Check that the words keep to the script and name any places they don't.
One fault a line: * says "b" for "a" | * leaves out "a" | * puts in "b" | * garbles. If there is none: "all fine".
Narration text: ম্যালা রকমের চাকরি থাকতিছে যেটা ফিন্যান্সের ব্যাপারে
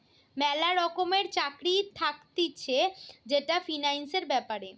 all fine